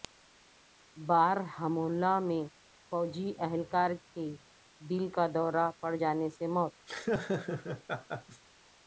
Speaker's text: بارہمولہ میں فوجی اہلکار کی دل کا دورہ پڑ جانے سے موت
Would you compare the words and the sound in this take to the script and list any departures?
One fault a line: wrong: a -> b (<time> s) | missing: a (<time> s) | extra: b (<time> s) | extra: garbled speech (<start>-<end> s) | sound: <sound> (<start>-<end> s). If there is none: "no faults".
sound: laugh (6.9-8.4 s)